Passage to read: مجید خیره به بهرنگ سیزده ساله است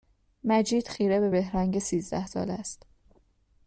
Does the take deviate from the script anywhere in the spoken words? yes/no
no